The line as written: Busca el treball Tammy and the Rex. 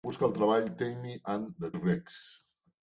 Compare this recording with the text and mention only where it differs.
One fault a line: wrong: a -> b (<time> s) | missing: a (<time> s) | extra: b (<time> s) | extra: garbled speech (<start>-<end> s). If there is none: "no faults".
no faults